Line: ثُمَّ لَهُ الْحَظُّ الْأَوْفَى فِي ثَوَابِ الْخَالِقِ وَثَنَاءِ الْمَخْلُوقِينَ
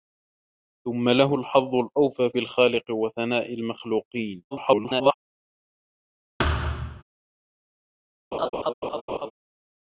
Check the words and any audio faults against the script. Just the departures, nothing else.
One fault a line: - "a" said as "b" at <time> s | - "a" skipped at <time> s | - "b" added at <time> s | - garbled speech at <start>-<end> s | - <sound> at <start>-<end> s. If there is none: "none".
- "فِي ثَوَابِ" skipped at 2.3 s
- garbled speech at 4.5-5.1 s
- thud at 6.4-7.0 s
- laugh at 8.3-9.3 s